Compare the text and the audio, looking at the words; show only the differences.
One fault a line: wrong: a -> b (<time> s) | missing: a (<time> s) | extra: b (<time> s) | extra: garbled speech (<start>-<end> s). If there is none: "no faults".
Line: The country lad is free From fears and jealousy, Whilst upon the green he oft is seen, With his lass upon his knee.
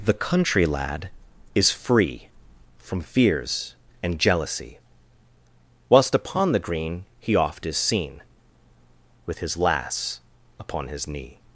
no faults